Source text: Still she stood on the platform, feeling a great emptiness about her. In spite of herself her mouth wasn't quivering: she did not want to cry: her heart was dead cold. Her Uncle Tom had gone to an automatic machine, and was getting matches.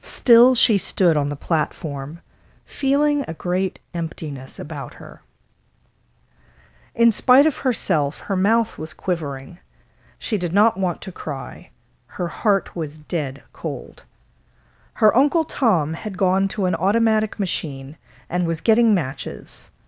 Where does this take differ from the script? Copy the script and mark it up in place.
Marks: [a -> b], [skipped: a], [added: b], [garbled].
Still she stood on the platform, feeling a great emptiness about her. In spite of herself her mouth [wasn't -> was] quivering: she did not want to cry: her heart was dead cold. Her Uncle Tom had gone to an automatic machine, and was getting matches.